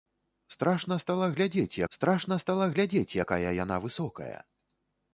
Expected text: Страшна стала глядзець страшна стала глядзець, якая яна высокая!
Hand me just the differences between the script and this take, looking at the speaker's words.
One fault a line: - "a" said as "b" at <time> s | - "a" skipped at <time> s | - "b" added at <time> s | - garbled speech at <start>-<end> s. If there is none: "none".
none